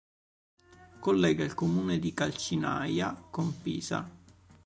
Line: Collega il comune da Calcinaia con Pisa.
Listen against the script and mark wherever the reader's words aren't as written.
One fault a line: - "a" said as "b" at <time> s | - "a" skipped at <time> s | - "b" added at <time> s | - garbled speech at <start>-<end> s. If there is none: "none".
- "da" said as "di" at 2.0 s